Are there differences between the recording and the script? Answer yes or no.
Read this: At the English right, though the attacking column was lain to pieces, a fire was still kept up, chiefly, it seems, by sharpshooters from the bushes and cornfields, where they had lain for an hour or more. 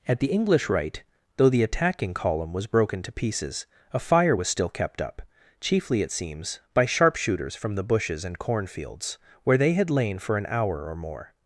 yes